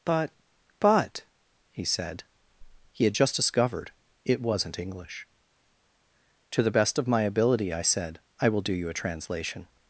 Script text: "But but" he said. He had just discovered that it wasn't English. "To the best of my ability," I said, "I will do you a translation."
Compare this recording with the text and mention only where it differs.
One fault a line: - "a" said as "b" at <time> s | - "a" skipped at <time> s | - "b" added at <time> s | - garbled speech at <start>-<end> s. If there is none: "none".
- "that" skipped at 3.9 s